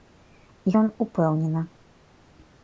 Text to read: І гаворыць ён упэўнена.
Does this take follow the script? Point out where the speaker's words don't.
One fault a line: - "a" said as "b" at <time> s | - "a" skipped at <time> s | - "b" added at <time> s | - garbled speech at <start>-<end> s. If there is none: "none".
- "гаворыць" skipped at 0.7 s